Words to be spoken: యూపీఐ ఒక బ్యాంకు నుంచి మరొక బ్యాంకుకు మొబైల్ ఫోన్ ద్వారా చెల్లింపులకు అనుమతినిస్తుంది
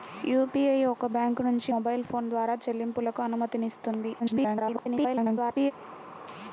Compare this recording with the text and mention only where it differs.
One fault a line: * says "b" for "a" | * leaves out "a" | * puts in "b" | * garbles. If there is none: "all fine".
* leaves out "మరొక బ్యాంకుకు"
* garbles